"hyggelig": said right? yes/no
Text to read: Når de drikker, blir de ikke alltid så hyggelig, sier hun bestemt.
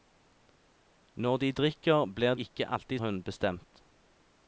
no